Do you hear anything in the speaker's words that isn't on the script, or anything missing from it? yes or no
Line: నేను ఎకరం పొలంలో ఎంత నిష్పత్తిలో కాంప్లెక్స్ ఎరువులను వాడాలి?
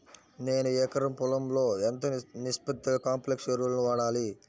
no